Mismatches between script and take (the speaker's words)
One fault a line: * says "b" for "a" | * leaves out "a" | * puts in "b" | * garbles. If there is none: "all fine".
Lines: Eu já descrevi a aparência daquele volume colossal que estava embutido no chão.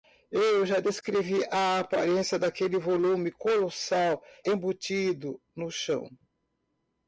* leaves out "que estava"